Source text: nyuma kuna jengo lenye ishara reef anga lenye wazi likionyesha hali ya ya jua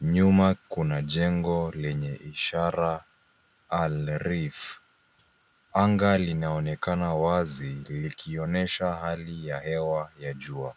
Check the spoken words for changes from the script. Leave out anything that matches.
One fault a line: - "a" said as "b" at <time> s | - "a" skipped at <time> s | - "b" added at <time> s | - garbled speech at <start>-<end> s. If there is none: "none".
- "al" added at 3.7 s
- "lenye" said as "linaonekana" at 6.2 s
- "hewa" added at 9.6 s